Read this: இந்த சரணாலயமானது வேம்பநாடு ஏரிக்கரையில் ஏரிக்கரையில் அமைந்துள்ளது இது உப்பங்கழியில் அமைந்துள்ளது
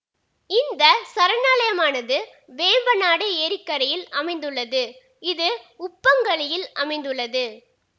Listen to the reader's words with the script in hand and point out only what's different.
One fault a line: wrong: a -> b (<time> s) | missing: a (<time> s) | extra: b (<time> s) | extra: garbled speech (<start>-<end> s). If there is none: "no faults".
missing: ஏரிக்கரையில் (4.1 s)